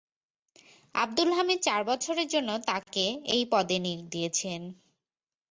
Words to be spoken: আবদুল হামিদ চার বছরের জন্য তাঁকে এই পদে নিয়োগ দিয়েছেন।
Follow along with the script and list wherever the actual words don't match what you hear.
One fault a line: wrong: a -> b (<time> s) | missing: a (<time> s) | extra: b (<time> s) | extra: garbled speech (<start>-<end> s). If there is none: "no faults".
no faults